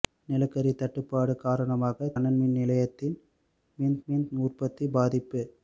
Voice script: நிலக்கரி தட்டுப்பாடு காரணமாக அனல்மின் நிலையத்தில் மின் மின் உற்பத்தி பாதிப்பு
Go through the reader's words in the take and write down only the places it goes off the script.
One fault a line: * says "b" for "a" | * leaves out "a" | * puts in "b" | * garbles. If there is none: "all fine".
all fine